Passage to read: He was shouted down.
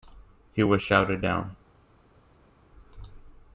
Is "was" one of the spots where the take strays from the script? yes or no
no